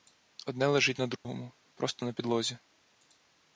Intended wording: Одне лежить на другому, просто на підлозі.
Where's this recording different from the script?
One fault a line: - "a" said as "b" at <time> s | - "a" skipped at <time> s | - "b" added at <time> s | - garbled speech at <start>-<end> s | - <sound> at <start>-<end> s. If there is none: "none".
- dropout at 1.2-1.2 s